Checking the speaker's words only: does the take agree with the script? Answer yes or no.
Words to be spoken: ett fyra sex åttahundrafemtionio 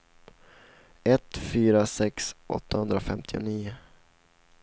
yes